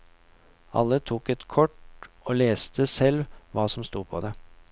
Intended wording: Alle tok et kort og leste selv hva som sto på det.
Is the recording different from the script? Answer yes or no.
no